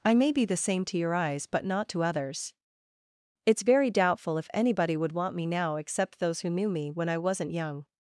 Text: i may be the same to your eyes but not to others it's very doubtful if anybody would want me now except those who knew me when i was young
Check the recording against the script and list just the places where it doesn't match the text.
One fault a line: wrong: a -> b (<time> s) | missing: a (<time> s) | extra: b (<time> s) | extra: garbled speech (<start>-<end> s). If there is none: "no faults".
wrong: was -> wasn't (7.2 s)